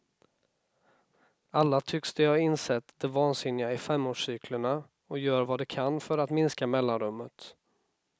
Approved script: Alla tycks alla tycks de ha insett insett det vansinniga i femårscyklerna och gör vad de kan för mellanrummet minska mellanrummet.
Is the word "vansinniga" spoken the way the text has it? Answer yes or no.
yes